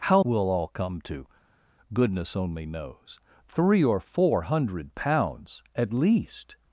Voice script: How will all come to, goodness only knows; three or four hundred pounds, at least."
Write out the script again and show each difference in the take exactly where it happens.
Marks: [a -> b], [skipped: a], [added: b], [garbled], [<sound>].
How will all come to, goodness only knows; three or four hundred pounds, at least."